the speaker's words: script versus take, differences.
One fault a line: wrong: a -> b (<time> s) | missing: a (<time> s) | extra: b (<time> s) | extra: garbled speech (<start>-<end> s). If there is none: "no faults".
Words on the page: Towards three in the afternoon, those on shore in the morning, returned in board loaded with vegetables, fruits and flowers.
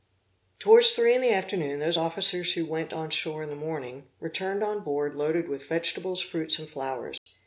extra: officers who went (2.0 s)
wrong: in -> on (4.6 s)